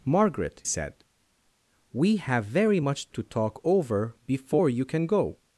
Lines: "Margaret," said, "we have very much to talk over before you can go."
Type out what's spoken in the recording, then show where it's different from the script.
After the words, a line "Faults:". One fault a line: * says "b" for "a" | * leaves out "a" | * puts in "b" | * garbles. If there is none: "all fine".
"Margaret," said, "we have very much to talk over before you can go."
Faults:
all fine